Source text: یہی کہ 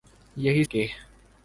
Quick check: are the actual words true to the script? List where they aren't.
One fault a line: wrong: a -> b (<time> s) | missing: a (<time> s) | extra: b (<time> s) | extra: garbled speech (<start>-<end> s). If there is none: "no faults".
no faults